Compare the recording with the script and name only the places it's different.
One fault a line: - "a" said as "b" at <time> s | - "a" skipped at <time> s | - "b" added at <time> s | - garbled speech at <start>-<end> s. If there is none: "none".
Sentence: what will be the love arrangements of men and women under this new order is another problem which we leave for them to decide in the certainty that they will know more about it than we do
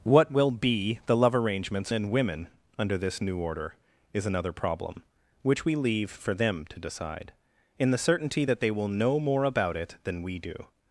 - "of men" skipped at 1.9 s